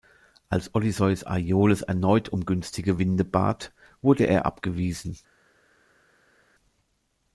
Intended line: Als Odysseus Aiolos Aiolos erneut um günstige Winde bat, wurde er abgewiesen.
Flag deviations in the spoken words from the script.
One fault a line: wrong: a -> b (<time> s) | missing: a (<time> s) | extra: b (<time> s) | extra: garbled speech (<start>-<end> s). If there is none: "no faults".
missing: Aiolos (1.8 s)